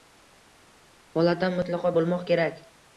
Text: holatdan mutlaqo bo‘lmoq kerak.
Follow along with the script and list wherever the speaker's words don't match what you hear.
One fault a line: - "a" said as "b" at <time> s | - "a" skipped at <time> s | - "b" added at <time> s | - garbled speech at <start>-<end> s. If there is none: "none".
none